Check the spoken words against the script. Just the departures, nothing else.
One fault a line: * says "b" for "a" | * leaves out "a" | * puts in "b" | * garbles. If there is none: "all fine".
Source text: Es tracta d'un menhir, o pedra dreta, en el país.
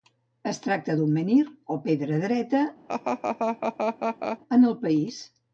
all fine